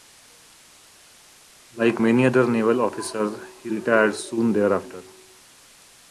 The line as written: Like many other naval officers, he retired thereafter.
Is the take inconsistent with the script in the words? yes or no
yes